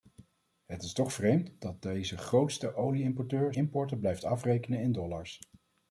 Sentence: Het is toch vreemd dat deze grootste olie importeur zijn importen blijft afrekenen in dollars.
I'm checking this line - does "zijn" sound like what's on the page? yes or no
no